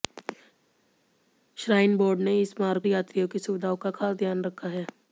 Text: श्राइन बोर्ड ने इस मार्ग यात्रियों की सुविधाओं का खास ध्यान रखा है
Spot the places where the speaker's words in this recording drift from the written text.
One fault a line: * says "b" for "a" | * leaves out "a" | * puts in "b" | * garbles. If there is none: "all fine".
all fine